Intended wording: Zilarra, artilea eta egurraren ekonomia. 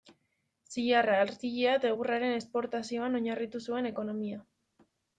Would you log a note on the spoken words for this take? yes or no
yes